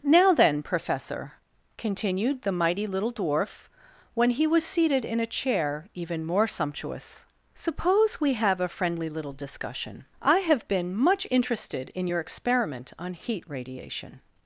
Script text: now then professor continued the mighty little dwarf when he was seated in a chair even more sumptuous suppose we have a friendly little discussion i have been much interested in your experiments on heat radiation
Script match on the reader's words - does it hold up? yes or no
no